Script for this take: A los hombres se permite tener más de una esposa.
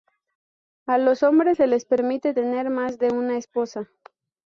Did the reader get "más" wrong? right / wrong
right